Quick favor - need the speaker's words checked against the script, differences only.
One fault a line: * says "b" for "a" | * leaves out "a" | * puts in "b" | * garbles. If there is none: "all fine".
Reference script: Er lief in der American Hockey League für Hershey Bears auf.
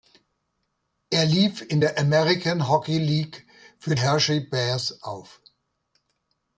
all fine